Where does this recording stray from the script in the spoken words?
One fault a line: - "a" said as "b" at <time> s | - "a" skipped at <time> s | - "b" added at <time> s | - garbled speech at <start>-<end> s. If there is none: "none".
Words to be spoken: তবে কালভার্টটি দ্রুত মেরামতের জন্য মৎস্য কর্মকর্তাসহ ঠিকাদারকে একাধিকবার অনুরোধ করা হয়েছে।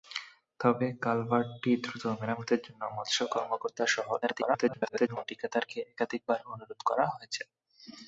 - garbled speech at 4.2-5.2 s